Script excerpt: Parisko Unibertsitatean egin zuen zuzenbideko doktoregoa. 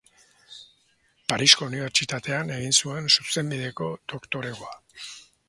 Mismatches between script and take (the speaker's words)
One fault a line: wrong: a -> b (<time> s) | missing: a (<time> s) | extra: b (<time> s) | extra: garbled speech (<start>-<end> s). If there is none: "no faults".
no faults